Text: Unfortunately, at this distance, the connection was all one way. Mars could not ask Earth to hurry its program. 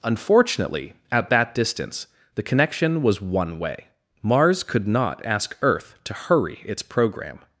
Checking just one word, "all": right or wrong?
wrong